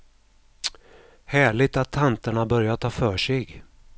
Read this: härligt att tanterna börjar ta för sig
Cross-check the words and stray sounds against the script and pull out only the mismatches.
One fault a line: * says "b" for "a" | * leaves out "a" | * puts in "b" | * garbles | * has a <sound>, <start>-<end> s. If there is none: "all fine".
all fine